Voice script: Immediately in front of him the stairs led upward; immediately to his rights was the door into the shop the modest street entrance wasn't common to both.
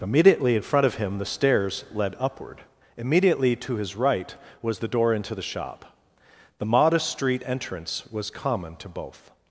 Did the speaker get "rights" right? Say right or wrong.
wrong